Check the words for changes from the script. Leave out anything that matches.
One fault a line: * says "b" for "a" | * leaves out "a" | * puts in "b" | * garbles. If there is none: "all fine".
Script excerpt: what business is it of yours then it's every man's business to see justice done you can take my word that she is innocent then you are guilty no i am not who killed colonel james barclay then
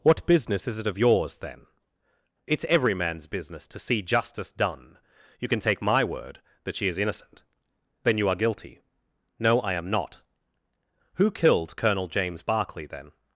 all fine